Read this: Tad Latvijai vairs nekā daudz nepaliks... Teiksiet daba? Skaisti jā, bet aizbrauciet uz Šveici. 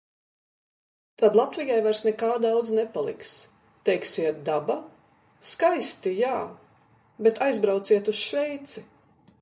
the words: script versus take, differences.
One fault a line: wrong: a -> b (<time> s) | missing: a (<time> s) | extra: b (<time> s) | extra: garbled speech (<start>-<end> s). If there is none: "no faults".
no faults